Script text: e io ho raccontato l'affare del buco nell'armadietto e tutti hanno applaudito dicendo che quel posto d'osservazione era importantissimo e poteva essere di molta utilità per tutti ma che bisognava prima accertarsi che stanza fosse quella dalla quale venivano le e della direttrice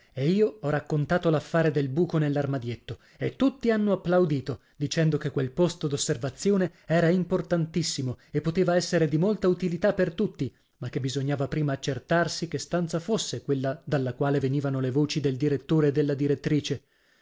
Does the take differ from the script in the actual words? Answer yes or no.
yes